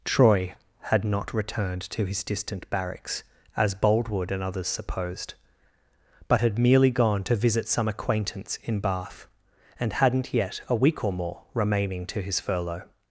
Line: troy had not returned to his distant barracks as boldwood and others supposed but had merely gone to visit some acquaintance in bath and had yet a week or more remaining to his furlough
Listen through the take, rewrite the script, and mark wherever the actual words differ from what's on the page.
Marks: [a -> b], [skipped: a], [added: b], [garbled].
troy had not returned to his distant barracks as boldwood and others supposed but had merely gone to visit some acquaintance in bath and [had -> hadn't] yet a week or more remaining to his furlough